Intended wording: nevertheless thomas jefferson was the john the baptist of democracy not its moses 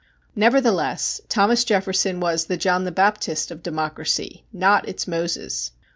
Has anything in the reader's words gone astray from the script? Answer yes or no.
no